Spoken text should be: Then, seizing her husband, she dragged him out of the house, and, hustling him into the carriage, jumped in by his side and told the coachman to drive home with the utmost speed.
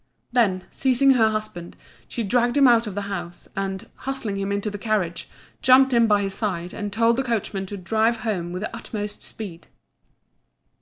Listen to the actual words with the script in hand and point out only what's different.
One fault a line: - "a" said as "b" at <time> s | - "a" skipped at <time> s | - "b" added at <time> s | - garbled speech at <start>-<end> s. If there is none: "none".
none